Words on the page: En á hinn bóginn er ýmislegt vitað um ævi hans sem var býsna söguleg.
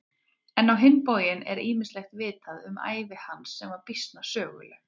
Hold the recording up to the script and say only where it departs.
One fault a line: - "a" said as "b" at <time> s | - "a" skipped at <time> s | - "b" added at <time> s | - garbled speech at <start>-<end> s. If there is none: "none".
none